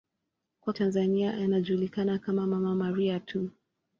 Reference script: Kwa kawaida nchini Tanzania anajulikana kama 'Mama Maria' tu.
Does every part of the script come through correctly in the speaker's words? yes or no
no